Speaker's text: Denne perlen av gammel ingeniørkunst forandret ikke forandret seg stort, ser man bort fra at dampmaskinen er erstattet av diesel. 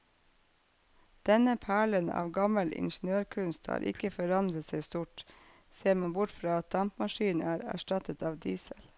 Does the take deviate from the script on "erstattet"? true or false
false